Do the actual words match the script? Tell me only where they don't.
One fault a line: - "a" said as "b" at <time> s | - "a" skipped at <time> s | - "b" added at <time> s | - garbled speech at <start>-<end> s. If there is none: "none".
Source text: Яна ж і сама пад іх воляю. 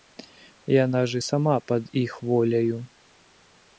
none